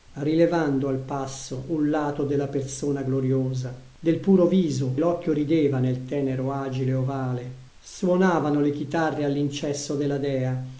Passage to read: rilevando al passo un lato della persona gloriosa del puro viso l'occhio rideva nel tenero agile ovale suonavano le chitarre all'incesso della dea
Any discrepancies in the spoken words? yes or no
no